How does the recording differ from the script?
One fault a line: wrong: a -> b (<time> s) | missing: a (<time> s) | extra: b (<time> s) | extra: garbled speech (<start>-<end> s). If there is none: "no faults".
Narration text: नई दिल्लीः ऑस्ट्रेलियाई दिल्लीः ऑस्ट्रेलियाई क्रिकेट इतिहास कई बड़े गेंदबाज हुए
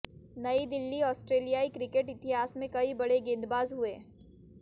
missing: दिल्लीः ऑस्ट्रेलियाई (1.7 s)
extra: में (2.6 s)